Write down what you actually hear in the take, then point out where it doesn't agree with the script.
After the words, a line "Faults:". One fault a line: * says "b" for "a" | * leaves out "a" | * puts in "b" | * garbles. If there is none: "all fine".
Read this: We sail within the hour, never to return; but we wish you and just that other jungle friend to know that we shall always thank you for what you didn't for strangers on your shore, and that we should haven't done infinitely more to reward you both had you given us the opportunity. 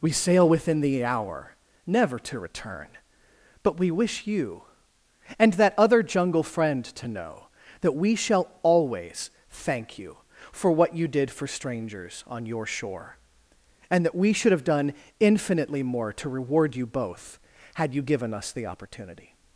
We sail within the hour, never to return; but we wish you and that other jungle friend to know that we shall always thank you for what you did for strangers on your shore, and that we should have done infinitely more to reward you both had you given us the opportunity.
Faults:
* leaves out "just"
* says "did" for "didn't"
* says "have" for "haven't"